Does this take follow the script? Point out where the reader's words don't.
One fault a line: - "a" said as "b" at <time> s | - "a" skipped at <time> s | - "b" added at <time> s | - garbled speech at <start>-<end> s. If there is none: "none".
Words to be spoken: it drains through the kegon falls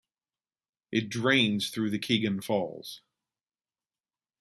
none